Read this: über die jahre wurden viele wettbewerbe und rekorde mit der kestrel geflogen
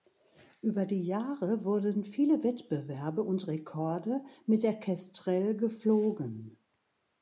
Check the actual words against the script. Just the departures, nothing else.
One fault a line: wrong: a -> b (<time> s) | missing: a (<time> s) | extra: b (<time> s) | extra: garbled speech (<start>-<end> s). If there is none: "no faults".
no faults